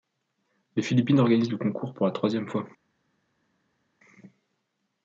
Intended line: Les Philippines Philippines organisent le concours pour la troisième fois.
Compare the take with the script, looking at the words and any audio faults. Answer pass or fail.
fail